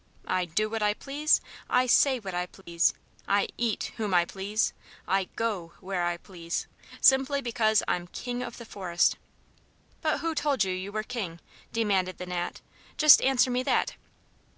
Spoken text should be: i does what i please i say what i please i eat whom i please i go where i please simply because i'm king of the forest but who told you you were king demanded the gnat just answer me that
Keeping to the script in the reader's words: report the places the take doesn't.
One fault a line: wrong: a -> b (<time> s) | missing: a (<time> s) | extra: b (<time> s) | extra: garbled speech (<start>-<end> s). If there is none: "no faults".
wrong: does -> do (0.5 s)